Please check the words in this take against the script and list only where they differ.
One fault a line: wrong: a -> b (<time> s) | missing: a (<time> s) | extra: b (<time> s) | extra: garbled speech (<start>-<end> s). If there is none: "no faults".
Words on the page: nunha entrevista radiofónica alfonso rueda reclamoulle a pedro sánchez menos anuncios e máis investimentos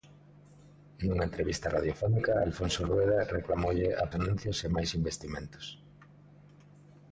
missing: pedro sánchez menos (4.0 s)